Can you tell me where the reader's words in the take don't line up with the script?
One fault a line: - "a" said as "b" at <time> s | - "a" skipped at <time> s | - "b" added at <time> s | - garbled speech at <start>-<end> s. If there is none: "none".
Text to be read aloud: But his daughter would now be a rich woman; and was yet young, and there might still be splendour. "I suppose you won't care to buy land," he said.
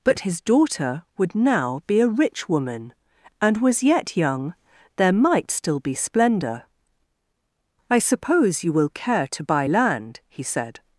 - "and" skipped at 4.5 s
- "won't" said as "will" at 8.7 s